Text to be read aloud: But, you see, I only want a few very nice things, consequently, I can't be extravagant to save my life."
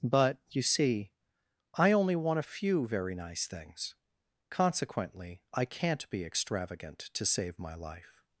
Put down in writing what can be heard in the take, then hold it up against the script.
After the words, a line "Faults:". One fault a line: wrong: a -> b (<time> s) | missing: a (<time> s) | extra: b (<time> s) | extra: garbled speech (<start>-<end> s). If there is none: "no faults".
But, you see, I only want a few very nice things, consequently, I can't be extravagant to save my life."
Faults:
no faults